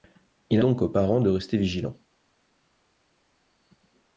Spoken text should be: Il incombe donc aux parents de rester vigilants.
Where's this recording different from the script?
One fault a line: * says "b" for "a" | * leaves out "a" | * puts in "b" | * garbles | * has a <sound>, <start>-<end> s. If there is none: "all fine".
* leaves out "incombe"